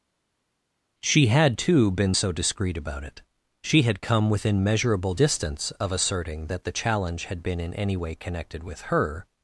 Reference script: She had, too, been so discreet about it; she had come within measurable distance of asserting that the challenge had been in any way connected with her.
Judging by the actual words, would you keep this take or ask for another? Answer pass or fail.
pass